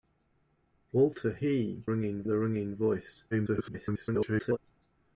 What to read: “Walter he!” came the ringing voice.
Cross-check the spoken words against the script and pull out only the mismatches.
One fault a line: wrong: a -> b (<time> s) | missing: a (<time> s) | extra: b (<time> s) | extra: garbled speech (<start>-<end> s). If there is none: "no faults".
wrong: came -> ringing (1.8 s)
extra: garbled speech (3.3-4.6 s)